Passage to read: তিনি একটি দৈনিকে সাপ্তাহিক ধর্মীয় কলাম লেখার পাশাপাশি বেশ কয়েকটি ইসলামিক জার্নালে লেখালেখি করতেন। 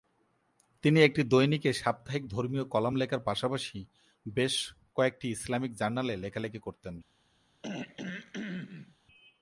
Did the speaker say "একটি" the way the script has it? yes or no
yes